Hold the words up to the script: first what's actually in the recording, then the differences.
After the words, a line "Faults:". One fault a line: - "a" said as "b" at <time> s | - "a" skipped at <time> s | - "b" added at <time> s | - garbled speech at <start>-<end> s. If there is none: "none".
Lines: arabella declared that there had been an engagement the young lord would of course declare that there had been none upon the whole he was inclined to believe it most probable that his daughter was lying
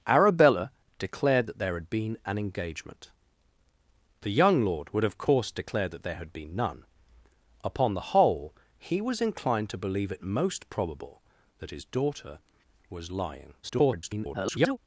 arabella declared that there had been an engagement the young lord would of course declare that there had been none upon the whole he was inclined to believe it most probable that his daughter was lying [garbled]
Faults:
- garbled speech at 13.6-14.8 s